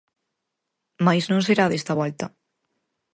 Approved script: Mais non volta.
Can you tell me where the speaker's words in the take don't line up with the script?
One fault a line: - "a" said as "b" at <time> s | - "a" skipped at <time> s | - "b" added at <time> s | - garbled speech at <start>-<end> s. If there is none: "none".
- "será desta" added at 1.5 s